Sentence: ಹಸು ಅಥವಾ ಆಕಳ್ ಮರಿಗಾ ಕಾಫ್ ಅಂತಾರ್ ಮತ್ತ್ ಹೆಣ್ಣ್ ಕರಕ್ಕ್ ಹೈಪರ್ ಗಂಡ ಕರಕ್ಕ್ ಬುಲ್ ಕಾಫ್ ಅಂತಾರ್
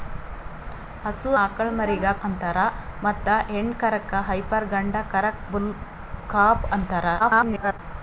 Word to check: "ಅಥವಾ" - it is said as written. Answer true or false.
false